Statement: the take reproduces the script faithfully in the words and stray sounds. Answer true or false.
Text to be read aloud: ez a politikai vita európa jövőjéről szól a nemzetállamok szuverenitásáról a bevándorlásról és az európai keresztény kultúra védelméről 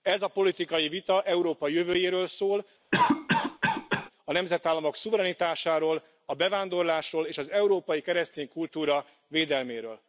false